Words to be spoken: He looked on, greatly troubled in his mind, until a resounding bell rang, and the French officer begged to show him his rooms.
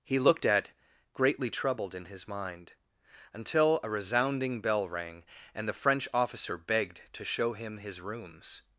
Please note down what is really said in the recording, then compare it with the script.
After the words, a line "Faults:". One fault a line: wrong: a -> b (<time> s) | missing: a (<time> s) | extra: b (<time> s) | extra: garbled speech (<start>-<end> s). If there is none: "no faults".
He looked at, greatly troubled in his mind, until a resounding bell rang, and the French officer begged to show him his rooms.
Faults:
wrong: on -> at (0.5 s)